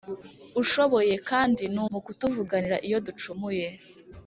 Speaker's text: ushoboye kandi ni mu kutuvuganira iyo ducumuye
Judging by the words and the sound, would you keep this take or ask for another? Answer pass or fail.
pass